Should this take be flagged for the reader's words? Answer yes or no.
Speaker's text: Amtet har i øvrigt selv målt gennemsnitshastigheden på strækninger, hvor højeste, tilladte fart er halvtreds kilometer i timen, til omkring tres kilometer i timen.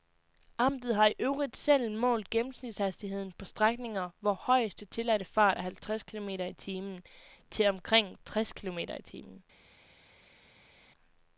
no